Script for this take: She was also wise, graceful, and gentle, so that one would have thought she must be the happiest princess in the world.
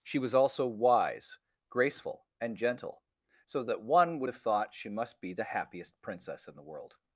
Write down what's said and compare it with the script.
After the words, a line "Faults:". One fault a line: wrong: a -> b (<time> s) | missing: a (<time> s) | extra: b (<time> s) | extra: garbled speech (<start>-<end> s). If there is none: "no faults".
She was also wise, graceful, and gentle, so that one would have thought she must be the happiest princess in the world.
Faults:
no faults